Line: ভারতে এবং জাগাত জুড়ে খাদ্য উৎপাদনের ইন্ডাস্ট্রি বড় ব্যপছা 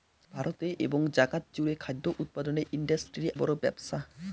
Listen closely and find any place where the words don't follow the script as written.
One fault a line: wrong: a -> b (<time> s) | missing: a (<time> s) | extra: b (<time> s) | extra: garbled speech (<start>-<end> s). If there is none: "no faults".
no faults